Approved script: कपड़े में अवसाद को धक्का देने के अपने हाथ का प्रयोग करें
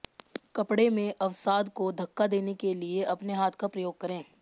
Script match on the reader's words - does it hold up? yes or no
no